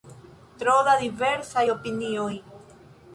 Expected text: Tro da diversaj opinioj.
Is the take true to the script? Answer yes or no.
yes